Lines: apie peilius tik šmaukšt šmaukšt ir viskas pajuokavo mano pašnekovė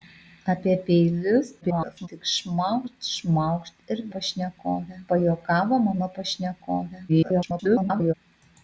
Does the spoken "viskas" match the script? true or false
false